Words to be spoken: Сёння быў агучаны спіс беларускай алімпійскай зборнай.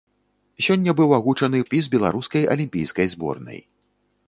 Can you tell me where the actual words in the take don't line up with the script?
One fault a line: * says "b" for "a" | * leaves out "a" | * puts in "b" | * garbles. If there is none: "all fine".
all fine